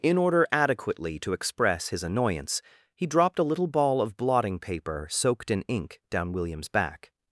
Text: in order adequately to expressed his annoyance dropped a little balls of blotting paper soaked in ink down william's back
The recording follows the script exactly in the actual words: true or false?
false